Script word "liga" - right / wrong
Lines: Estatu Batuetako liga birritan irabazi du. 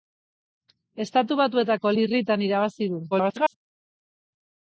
wrong